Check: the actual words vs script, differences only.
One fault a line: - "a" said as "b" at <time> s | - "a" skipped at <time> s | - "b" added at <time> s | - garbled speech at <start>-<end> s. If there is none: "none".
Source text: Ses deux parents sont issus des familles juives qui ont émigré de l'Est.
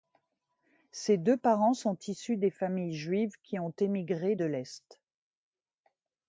none